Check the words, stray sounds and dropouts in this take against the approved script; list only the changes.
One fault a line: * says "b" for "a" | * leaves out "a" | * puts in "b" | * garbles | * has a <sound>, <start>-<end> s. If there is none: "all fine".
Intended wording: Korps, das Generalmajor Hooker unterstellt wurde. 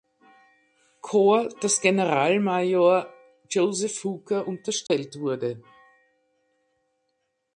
* puts in "Joseph"
* has a dropout, 4.9-4.9 s